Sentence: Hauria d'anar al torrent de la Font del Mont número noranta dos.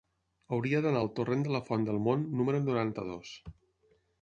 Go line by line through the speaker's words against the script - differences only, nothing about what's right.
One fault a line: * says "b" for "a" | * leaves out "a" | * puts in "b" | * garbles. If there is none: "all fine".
all fine